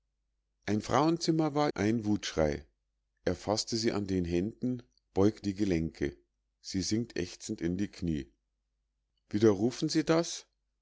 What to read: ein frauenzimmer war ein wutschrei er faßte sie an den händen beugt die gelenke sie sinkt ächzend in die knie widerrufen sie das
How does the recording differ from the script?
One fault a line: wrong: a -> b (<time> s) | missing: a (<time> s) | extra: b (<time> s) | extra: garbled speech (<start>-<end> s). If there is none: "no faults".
no faults